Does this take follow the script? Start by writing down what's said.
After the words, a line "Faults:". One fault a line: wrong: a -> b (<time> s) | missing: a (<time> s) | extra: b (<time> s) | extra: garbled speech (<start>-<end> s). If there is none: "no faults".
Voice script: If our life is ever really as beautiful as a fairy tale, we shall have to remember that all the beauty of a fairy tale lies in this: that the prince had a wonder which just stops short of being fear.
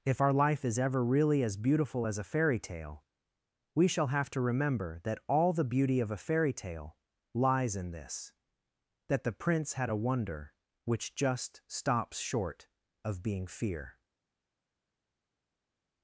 If our life is ever really as beautiful as a fairy tale, we shall have to remember that all the beauty of a fairy tale lies in this: that the prince had a wonder which just stops short of being fear.
Faults:
no faults